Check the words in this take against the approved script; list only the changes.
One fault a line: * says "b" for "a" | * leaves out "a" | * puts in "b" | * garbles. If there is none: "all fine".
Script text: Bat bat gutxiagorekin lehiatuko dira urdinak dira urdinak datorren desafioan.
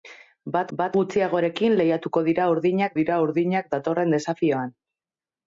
all fine